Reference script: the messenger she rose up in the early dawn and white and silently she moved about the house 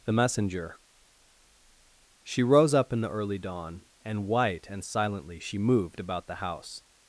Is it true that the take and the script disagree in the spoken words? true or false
false